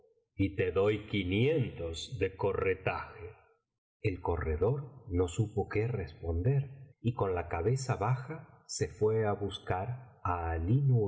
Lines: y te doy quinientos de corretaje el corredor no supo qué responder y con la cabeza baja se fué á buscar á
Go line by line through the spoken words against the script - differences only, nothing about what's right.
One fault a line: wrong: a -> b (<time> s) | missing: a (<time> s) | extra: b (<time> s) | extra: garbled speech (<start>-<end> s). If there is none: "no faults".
no faults